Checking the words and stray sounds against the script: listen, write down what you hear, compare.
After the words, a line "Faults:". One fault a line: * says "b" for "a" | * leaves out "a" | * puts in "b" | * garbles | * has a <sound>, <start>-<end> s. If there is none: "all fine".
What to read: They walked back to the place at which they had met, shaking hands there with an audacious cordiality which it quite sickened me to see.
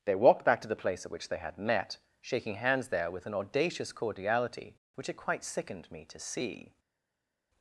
They walked back to the place at which they had met, shaking hands there with an audacious cordiality which it quite sickened me to see.
Faults:
all fine